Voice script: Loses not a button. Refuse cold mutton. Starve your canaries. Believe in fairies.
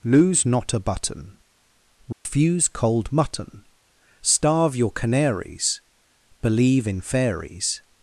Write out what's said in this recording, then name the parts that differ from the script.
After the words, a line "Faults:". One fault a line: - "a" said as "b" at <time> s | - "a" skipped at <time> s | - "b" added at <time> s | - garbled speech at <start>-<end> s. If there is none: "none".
Lose not a button. Refuse cold mutton. Starve your canaries. Believe in fairies.
Faults:
- "Loses" said as "Lose" at 0.0 s